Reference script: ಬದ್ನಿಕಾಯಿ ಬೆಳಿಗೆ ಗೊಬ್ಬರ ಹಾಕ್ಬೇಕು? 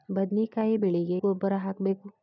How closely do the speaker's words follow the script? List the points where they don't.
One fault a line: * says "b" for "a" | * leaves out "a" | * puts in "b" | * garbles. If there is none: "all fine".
all fine